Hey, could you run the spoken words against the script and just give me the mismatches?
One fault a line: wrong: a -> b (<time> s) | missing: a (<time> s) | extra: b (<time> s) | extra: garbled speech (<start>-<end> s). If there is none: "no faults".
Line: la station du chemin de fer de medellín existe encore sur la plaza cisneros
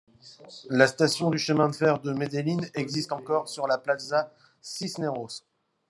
no faults